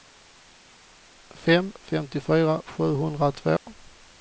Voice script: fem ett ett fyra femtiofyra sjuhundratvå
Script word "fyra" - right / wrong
wrong